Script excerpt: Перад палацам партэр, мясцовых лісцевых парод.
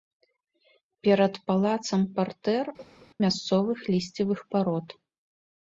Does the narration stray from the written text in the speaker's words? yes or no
no